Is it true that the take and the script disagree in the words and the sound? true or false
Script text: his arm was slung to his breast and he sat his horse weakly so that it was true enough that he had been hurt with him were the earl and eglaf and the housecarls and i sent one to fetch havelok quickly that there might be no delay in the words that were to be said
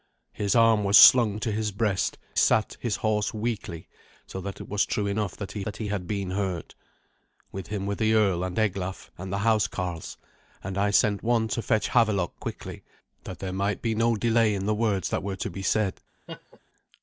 true